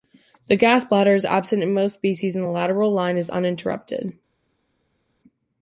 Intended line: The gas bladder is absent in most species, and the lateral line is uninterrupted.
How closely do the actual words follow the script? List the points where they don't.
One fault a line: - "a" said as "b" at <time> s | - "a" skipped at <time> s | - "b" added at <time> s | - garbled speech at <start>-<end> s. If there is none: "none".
none